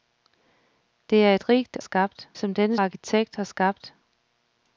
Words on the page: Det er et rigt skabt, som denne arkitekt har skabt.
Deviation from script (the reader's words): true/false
false